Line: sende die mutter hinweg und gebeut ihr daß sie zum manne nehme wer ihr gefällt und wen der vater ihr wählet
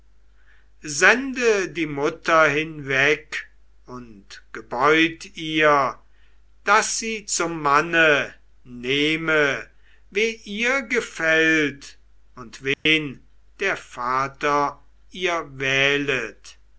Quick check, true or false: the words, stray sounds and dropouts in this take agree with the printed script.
false